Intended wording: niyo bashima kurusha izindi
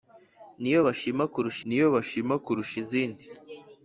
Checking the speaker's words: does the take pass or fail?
fail